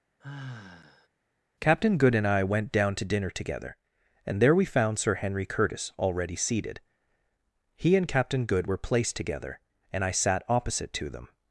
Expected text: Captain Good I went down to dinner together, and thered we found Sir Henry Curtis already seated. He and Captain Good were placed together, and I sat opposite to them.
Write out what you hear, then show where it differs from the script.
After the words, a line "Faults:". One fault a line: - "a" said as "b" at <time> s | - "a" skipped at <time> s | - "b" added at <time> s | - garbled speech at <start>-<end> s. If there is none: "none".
Captain Good and I went down to dinner together, and there we found Sir Henry Curtis already seated. He and Captain Good were placed together, and I sat opposite to them.
Faults:
- "and" added at 2.1 s
- "thered" said as "there" at 4.4 s